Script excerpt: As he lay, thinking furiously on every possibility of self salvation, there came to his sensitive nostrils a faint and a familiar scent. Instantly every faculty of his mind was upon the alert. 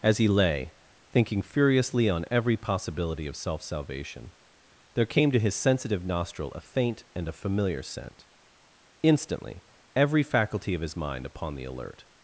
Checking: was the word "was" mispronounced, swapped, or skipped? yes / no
yes